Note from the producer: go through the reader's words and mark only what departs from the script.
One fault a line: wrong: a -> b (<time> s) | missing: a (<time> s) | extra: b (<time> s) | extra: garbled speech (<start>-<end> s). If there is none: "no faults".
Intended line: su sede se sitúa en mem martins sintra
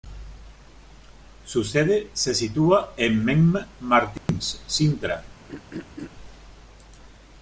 no faults